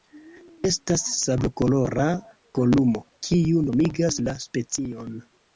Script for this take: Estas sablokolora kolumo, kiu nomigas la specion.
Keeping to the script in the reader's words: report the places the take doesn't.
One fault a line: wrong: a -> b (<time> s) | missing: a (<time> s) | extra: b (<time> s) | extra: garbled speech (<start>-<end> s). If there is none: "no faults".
no faults